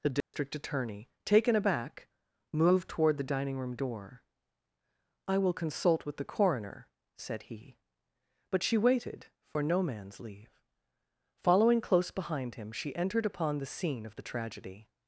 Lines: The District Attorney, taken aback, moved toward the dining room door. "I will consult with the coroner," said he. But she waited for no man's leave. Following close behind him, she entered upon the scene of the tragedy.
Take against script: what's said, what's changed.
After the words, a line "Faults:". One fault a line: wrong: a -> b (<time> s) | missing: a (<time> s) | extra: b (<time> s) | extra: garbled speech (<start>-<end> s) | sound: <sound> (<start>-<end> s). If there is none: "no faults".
The District Attorney, taken aback, moved toward the dining room door. "I will consult with the coroner," said he. But she waited for no man's leave. Following close behind him, she entered upon the scene of the tragedy.
Faults:
sound: dropout (0.2-0.3 s)